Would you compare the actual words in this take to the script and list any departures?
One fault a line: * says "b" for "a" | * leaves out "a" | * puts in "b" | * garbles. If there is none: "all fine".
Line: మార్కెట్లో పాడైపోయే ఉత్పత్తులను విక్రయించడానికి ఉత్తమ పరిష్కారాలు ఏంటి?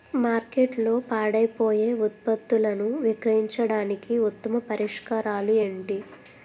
all fine